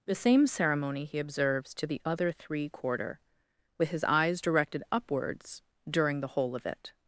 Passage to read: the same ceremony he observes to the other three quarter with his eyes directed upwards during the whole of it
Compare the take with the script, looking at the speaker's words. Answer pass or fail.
pass